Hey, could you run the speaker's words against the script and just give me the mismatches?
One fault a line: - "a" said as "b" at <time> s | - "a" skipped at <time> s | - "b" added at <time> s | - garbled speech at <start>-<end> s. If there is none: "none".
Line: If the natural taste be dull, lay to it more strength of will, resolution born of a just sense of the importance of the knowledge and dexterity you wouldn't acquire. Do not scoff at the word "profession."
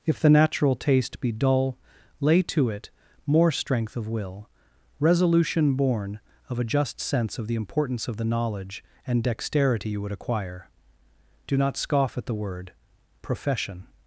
- "wouldn't" said as "would" at 10.0 s